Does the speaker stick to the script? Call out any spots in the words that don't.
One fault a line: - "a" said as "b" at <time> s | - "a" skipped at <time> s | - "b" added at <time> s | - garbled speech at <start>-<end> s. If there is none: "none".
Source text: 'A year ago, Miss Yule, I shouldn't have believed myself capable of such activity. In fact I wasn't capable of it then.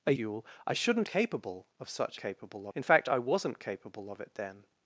- "year ago Miss" skipped at 0.1 s
- "have believed myself" skipped at 1.1 s
- "activity" said as "capable" at 2.2 s